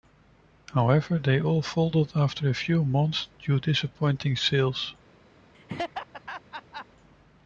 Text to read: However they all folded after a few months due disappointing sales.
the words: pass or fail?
pass